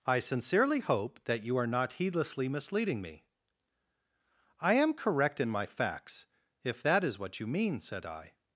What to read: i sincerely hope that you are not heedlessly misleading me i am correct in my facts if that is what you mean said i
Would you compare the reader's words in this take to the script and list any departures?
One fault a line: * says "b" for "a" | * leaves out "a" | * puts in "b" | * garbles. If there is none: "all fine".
all fine